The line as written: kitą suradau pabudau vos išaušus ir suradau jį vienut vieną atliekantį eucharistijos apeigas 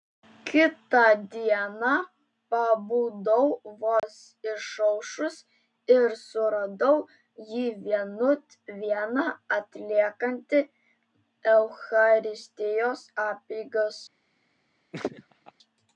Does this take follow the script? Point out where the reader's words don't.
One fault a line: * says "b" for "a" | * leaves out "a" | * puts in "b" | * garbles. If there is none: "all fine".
* says "dieną" for "suradau"